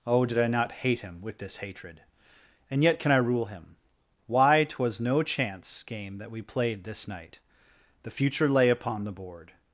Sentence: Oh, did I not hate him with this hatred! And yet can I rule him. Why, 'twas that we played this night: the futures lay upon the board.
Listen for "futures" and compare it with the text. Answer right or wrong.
wrong